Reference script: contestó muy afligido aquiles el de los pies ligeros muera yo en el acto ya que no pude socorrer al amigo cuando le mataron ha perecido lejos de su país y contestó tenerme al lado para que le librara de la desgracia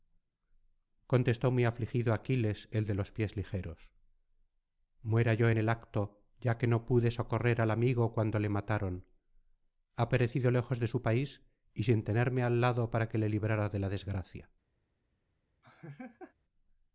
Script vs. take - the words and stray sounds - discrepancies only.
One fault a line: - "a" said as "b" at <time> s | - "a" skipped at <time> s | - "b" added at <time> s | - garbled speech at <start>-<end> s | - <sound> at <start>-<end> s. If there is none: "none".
- "contestó" said as "sin" at 11.8 s
- laugh at 15.6-16.3 s